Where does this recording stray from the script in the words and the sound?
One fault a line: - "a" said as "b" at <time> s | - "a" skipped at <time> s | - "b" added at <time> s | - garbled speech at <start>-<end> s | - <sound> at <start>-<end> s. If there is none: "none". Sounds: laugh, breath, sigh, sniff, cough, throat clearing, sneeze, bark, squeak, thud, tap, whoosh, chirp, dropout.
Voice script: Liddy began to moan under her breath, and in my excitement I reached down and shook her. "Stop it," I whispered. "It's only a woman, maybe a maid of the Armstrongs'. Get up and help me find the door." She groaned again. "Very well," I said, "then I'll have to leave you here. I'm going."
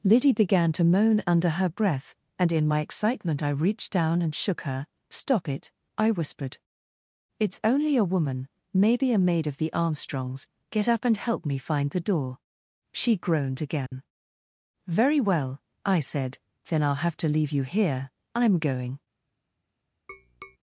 - dropout at 13.9-13.9 s
- tap at 20.1-20.6 s